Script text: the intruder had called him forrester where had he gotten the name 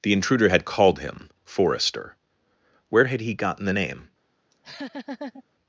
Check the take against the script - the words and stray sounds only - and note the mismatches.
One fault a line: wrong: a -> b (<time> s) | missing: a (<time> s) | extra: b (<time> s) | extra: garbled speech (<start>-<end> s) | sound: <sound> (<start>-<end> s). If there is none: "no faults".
sound: laugh (4.5-5.4 s)